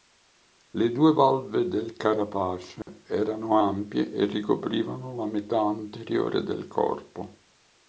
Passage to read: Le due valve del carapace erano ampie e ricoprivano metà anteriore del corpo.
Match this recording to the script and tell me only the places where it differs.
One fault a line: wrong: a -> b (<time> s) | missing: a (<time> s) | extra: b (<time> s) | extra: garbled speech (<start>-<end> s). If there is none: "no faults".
extra: la (5.1 s)